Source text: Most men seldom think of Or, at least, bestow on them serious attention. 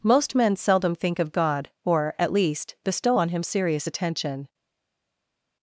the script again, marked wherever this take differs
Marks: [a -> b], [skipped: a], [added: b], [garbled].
Most men seldom think of [added: God] Or, at least, bestow on [them -> him] serious attention.